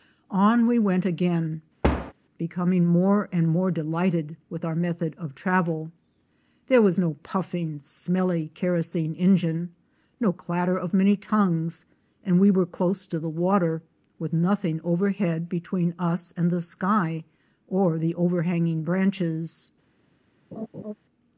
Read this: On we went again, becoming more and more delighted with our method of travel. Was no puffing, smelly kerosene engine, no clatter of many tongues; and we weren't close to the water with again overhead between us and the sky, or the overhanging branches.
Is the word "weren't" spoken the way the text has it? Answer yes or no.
no